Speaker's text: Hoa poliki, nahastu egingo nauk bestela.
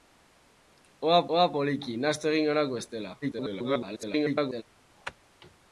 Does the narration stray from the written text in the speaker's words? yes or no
yes